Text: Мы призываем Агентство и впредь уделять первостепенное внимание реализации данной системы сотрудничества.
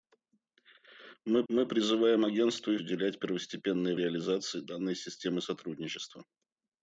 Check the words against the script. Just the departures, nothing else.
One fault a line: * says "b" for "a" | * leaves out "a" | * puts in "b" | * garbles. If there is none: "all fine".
* puts in "мы"
* leaves out "впредь"
* leaves out "внимание"